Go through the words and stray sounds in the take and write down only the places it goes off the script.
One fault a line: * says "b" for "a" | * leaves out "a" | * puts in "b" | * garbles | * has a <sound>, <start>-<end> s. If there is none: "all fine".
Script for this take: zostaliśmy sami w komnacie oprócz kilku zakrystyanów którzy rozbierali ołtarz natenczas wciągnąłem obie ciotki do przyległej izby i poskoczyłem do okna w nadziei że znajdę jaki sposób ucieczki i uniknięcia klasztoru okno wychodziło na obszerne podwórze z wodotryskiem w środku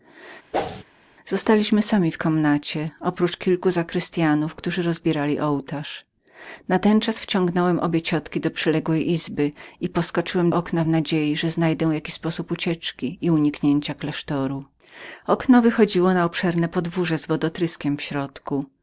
* has a whoosh, 0.5-0.8 s
* leaves out "do"